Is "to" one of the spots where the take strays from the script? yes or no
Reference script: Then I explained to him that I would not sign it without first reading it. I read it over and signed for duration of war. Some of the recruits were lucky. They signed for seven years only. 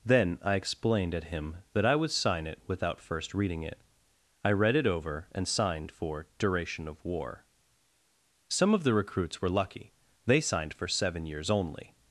yes